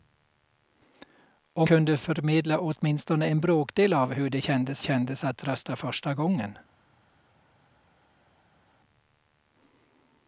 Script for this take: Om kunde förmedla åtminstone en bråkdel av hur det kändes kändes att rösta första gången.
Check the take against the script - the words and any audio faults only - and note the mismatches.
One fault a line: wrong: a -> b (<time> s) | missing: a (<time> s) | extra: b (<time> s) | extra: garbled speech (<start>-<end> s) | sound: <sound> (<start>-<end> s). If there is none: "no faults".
no faults